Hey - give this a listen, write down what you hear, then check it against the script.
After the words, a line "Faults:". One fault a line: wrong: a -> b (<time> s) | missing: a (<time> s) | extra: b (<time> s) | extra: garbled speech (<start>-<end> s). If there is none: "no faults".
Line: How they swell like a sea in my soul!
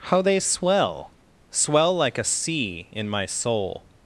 How they swell swell like a sea in my soul!
Faults:
extra: swell (1.5 s)